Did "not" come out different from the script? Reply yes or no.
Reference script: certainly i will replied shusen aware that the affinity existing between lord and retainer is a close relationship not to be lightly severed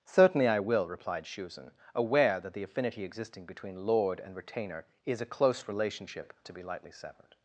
yes